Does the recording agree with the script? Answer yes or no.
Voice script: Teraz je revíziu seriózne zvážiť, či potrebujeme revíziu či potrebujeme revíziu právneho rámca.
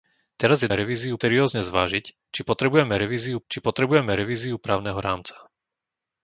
yes